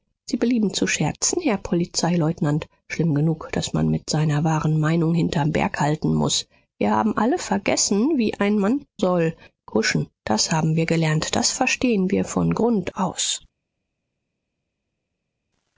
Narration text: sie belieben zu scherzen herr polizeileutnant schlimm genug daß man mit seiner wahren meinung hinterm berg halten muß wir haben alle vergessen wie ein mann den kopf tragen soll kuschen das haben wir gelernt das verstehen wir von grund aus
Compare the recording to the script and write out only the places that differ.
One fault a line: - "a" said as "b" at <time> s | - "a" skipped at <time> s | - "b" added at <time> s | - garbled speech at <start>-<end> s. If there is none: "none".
- "den kopf tragen" skipped at 8.8 s